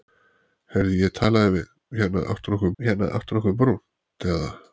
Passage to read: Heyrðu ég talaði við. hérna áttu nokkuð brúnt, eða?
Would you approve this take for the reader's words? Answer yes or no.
no